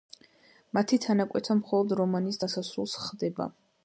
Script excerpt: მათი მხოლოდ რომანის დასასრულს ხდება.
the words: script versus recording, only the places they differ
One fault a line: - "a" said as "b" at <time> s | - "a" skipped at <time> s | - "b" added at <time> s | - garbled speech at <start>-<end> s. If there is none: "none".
- "თანაკვეთა" added at 1.0 s